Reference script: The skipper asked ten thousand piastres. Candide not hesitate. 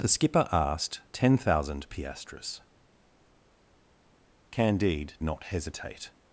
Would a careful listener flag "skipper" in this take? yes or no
no